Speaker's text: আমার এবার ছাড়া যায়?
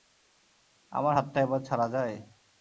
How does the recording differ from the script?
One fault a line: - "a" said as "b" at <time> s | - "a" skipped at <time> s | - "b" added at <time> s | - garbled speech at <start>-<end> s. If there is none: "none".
- "হাতটা" added at 1.2 s